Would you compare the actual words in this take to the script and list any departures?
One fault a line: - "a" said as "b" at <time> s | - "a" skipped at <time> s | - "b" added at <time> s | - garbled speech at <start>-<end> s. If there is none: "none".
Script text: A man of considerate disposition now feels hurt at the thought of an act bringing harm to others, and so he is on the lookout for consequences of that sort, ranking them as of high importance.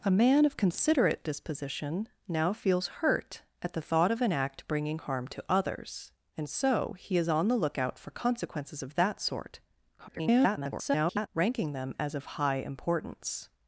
- garbled speech at 10.0-11.3 s